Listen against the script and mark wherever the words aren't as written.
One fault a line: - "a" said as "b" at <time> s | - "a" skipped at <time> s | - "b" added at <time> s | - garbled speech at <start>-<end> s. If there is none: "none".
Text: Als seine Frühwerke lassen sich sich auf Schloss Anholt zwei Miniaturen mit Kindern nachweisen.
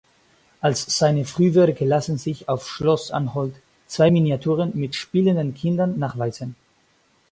- "sich" skipped at 2.5 s
- "spielenden" added at 4.9 s